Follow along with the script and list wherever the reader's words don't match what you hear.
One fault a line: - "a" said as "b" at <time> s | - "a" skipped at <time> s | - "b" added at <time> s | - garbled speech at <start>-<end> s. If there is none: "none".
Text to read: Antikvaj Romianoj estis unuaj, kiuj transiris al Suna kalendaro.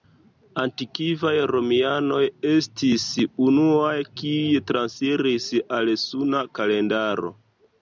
none